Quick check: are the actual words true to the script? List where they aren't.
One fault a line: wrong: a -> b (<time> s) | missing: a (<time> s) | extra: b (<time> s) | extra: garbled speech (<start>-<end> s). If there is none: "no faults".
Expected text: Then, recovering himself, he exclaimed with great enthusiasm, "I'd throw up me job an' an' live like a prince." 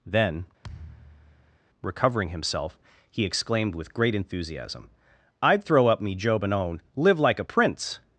wrong: an an -> and own (6.4 s)